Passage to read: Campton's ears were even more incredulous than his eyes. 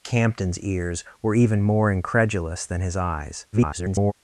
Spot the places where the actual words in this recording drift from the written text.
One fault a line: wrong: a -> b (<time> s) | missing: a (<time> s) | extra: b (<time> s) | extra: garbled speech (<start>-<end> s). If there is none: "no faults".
extra: garbled speech (3.5-4.1 s)